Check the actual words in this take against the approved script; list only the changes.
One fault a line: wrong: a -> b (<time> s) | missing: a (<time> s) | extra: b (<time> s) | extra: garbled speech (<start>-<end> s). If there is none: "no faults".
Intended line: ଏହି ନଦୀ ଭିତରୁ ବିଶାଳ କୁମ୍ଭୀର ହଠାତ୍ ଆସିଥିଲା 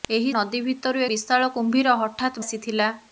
no faults